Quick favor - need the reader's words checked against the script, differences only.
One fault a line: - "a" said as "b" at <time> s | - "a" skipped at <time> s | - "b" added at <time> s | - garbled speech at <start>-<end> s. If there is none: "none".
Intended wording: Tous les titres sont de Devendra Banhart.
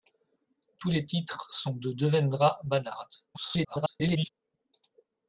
- garbled speech at 3.3-4.3 s